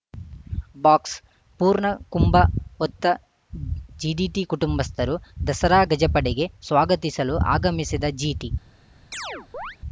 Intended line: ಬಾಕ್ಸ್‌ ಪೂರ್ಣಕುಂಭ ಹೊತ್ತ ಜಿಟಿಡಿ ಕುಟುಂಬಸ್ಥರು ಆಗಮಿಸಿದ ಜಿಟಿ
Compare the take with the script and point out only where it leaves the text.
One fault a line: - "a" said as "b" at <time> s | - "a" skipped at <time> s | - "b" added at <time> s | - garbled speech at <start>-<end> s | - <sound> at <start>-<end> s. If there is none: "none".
- "ದಸರಾ ಗಜಪಡೆಗೆ ಸ್ವಾಗತಿಸಲು" added at 5.5 s
- chirp at 9.1-9.8 s